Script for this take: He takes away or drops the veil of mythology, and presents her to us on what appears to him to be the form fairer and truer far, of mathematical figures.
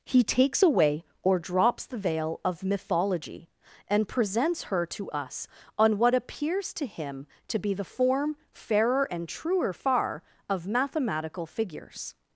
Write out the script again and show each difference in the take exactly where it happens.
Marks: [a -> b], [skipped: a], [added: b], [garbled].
He takes away or drops the veil of mythology, and presents her to us on what appears to him to be the form fairer and truer far, of mathematical figures.